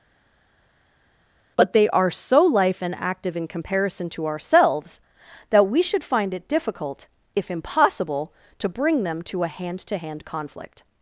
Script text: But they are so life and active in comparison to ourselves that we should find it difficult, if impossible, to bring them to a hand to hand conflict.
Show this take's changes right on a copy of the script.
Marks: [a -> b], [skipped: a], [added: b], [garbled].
But they are so life and active in comparison to ourselves that we should find it difficult, if impossible, to bring them to a hand to hand conflict.